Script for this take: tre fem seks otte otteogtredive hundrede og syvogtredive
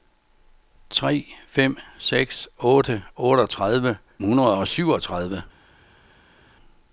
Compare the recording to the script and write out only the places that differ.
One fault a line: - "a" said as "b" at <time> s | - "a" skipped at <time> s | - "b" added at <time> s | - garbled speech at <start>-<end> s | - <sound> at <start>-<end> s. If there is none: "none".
none